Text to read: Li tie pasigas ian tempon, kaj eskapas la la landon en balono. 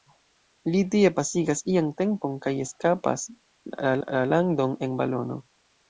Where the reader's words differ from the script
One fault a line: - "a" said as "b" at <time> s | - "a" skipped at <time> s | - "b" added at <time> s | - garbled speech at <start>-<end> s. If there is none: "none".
none